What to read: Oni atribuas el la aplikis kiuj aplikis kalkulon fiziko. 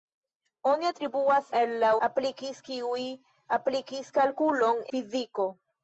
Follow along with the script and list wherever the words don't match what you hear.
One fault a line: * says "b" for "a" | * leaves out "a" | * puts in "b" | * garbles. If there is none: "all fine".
all fine